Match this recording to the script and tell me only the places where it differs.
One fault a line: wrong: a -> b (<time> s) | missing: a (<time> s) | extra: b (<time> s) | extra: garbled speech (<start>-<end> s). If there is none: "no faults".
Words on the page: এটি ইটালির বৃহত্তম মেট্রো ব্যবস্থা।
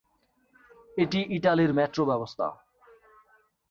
missing: বৃহত্তম (1.7 s)